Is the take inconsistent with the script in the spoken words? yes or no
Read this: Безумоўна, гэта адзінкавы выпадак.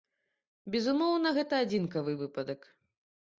no